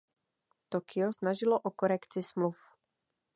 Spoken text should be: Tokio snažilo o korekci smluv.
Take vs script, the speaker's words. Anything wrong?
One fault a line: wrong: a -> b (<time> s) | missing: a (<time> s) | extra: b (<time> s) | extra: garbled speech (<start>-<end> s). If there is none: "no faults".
no faults